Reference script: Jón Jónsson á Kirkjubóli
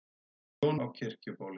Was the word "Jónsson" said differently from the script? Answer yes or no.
yes